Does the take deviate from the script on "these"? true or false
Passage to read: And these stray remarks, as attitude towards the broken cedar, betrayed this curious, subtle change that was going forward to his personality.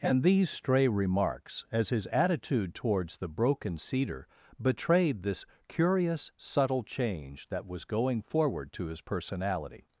false